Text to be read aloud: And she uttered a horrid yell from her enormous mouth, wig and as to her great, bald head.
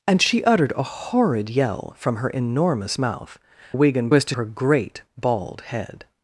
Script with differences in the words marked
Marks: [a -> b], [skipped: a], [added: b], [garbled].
And she uttered a horrid yell from her enormous mouth, wig and as to her great, bald head.